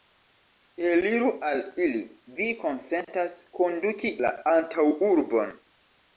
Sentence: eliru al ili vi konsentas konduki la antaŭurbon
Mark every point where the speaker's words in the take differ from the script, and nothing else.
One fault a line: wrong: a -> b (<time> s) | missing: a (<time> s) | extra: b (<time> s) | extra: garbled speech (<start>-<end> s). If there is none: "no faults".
no faults